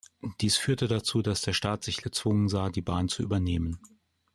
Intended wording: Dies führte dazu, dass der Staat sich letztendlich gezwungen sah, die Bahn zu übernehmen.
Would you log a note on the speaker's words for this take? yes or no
yes